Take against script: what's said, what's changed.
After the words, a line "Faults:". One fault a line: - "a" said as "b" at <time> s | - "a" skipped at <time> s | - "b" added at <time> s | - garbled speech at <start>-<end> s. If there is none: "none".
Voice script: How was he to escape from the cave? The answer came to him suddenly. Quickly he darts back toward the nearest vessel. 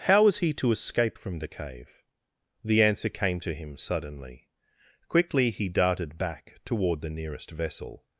How was he to escape from the cave? The answer came to him suddenly. Quickly he darted back toward the nearest vessel.
Faults:
- "darts" said as "darted" at 5.7 s